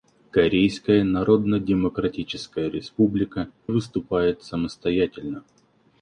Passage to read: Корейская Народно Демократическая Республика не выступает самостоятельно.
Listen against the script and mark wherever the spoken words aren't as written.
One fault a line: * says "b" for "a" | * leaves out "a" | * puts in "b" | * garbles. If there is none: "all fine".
* leaves out "не"